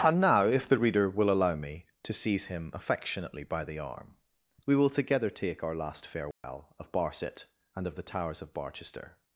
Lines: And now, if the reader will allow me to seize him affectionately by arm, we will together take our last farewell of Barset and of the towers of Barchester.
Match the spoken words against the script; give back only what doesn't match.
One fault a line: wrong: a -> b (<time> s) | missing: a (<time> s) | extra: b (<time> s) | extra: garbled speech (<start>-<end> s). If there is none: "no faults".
extra: the (3.6 s)